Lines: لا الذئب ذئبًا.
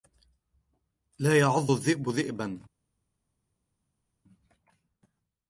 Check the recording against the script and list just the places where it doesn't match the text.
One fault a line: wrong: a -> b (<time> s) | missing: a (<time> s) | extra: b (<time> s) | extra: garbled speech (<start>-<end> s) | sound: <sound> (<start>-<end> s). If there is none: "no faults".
extra: يعض (1.4 s)